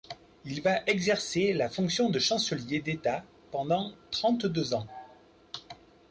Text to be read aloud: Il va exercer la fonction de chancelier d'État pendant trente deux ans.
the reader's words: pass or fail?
pass